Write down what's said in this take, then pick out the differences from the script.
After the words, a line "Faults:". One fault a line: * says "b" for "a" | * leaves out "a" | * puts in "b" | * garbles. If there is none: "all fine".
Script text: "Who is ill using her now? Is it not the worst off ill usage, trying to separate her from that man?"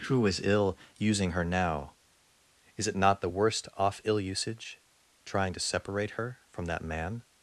"Who is ill using her now? Is it not the worst off ill usage, trying to separate her from that man?"
Faults:
all fine